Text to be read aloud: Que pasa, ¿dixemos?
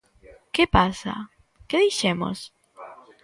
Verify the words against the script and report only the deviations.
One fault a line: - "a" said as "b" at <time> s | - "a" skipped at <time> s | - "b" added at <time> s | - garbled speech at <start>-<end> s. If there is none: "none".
- "que" added at 1.7 s